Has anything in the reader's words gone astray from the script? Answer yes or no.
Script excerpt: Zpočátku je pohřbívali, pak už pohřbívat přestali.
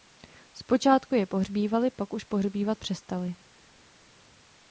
no